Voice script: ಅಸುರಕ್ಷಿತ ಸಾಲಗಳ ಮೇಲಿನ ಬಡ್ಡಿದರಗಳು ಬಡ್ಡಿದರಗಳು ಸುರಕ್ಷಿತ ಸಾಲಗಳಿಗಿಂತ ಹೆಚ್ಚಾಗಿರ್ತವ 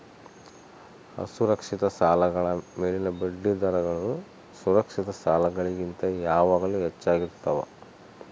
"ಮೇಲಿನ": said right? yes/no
yes